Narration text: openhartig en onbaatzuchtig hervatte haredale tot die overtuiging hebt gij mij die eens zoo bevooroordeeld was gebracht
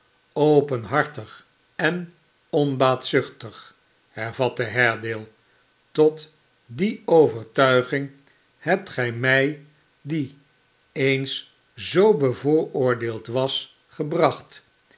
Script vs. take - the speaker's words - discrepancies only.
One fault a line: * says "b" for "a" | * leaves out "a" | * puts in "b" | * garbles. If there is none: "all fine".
all fine